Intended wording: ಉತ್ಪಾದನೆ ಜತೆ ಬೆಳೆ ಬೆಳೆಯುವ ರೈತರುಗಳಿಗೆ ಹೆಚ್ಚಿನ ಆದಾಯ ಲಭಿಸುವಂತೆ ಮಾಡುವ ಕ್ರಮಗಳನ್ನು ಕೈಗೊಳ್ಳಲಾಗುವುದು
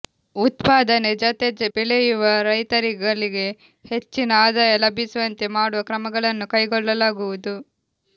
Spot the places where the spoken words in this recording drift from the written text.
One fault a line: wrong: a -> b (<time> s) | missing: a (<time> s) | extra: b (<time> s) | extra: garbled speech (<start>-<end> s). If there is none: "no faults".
missing: ಬೆಳೆ (1.5 s)